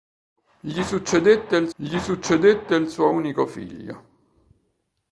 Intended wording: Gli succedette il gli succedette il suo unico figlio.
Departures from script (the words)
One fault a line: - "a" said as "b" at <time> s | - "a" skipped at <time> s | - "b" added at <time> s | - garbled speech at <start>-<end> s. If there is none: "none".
none